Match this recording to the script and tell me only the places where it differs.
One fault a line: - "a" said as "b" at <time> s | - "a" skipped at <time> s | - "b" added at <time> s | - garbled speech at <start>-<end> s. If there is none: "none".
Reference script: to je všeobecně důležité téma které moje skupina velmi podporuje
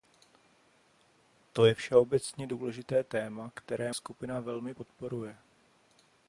- "moje" skipped at 3.9 s